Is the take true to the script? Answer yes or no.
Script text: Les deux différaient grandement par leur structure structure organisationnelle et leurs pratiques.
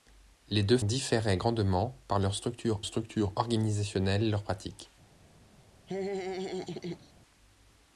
yes